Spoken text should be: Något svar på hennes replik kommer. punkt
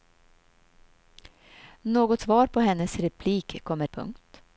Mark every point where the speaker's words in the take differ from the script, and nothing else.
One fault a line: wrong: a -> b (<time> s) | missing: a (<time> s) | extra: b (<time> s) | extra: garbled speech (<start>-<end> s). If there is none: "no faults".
no faults